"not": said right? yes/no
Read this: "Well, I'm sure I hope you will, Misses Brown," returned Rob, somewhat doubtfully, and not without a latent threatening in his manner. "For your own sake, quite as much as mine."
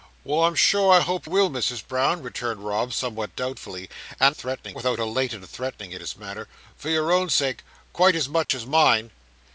no